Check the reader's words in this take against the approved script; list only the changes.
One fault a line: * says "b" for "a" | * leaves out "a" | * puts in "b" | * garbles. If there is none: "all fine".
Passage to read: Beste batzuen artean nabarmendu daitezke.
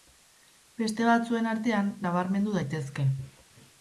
all fine